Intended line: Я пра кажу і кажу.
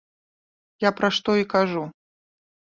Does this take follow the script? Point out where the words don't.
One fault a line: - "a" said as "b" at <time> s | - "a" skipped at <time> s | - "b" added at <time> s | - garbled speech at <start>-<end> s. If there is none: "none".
- "кажу" said as "што" at 1.2 s